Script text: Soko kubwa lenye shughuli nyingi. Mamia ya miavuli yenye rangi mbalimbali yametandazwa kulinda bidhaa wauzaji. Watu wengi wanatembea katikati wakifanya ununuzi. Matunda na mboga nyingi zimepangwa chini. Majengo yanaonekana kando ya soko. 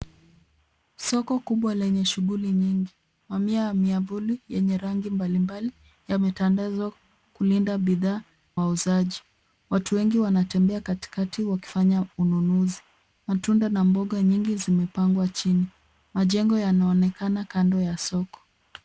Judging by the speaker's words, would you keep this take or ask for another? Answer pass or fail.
pass